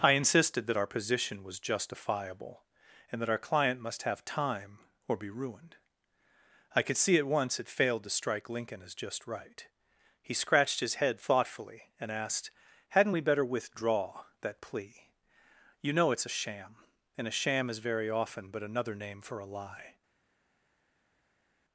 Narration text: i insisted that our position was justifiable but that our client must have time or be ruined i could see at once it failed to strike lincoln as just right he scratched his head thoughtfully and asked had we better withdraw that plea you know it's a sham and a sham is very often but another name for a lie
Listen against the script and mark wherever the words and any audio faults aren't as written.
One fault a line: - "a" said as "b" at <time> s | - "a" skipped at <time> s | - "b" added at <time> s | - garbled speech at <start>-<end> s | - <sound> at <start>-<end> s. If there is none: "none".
- "but" said as "and" at 3.1 s
- "had" said as "hadn't" at 12.9 s